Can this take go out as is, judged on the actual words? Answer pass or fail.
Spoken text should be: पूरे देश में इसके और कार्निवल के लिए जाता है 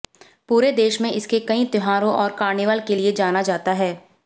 fail